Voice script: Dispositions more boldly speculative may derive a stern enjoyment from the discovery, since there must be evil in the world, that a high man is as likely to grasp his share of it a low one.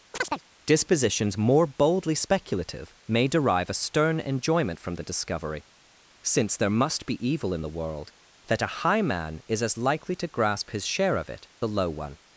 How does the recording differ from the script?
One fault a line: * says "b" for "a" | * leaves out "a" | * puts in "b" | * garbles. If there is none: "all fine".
all fine